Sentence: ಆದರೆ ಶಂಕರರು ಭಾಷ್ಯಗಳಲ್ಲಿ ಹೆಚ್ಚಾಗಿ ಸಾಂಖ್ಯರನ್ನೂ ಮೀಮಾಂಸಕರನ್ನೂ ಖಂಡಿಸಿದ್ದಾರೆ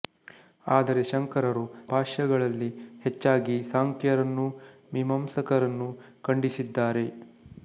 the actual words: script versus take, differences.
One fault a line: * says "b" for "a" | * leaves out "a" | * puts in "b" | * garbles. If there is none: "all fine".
all fine